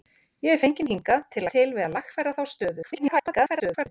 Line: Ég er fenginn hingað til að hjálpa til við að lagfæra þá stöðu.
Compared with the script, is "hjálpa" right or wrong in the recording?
wrong